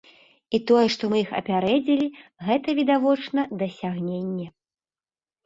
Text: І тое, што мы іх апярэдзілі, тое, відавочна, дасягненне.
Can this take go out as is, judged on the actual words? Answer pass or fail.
fail